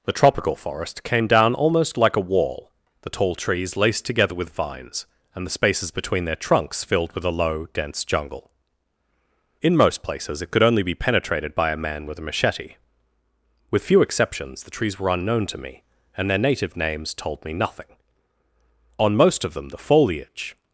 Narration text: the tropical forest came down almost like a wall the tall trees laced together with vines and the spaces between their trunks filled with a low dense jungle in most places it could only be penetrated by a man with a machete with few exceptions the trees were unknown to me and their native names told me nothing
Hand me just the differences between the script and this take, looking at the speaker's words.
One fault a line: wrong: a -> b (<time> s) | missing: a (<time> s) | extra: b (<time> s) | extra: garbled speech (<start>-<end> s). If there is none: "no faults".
extra: on most of them the foliage (19.0 s)